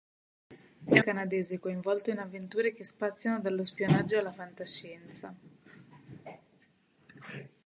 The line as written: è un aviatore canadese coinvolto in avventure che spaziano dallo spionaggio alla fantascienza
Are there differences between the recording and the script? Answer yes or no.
yes